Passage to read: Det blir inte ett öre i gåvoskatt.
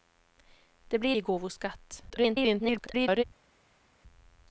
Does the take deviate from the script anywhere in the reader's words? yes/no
yes